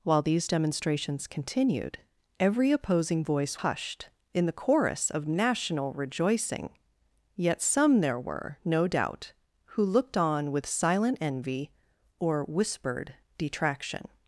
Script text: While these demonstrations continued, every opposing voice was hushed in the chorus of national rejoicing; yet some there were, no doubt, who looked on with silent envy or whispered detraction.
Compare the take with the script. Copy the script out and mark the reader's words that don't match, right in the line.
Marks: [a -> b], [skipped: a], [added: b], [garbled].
While these demonstrations continued, every opposing voice [skipped: was] hushed in the chorus of national rejoicing; yet some there were, no doubt, who looked on with silent envy or whispered detraction.